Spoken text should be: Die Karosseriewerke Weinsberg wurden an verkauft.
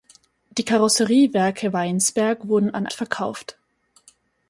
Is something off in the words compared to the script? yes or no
no